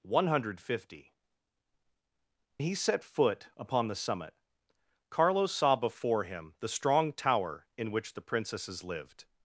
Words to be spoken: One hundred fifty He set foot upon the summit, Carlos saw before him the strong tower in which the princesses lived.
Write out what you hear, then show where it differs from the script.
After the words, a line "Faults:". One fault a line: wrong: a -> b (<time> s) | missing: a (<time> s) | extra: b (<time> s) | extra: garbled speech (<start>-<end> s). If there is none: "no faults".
One hundred fifty He set foot upon the summit, Carlos saw before him the strong tower in which the princesses lived.
Faults:
no faults